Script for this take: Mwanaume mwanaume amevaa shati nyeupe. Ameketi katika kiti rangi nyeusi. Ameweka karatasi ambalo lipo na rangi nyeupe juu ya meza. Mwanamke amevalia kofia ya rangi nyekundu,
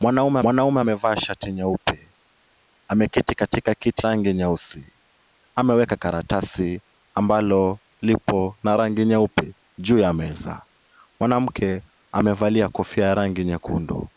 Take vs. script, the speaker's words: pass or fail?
pass